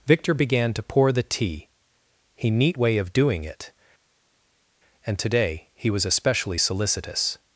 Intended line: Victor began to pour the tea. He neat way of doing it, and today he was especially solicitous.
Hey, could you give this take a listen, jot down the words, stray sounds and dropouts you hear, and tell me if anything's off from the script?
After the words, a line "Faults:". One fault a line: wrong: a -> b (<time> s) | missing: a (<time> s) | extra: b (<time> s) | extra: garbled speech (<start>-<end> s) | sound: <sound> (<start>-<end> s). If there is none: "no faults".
Victor began to pour the tea. He neat way of doing it, and today he was especially solicitous.
Faults:
no faults